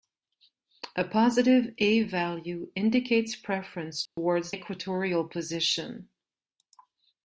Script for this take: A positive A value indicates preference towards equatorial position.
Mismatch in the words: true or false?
false